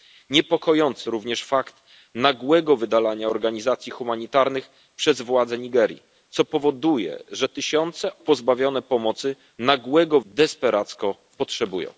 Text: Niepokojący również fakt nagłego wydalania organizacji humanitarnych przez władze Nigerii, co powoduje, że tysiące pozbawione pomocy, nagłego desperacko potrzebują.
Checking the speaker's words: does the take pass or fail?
pass